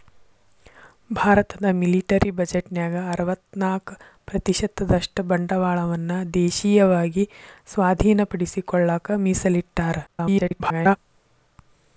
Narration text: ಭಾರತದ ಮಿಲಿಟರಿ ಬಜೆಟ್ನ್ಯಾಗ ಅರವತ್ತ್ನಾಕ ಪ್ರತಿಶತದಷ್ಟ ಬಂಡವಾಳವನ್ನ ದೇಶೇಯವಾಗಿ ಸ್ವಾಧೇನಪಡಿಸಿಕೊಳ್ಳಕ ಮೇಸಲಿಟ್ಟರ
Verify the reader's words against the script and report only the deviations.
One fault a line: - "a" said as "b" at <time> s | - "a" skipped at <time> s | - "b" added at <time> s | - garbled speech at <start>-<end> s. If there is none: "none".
- garbled speech at 10.1-11.0 s